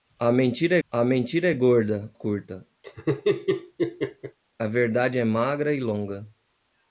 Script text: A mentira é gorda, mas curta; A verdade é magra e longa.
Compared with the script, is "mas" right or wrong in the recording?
wrong